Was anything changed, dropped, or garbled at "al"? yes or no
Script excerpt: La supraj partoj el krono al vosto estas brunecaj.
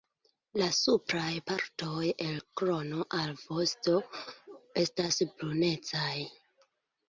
no